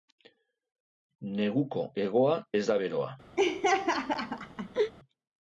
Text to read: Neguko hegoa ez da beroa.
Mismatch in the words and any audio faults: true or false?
true